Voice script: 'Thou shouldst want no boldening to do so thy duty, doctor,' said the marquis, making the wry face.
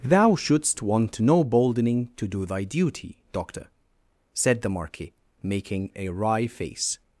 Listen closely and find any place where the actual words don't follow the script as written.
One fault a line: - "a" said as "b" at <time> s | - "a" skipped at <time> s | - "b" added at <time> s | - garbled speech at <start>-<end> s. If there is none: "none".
- "so" skipped at 2.5 s
- "the" said as "a" at 6.0 s